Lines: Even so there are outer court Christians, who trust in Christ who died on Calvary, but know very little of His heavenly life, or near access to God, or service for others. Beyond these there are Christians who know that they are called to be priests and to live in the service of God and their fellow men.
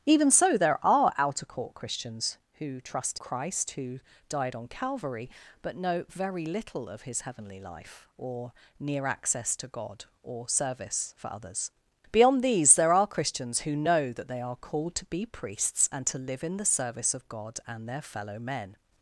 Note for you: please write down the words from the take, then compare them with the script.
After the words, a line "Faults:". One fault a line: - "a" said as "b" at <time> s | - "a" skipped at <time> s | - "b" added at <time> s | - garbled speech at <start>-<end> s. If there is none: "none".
Even so there are outer court Christians, who trust Christ who died on Calvary, but know very little of His heavenly life, or near access to God, or service for others. Beyond these there are Christians who know that they are called to be priests and to live in the service of God and their fellow men.
Faults:
- "in" skipped at 3.2 s